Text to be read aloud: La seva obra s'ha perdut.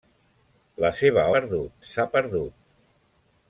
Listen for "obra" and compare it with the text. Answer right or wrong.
wrong